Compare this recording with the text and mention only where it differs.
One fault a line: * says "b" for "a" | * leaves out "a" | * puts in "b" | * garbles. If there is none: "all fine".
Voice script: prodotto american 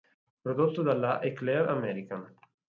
* puts in "dalla eclair"